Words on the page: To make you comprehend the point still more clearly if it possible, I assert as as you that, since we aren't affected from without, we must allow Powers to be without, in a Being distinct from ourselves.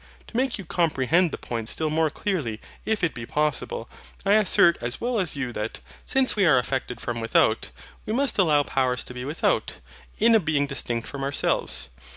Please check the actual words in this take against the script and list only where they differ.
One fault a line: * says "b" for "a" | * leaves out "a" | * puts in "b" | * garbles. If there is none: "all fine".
* puts in "be"
* puts in "well"
* says "are" for "aren't"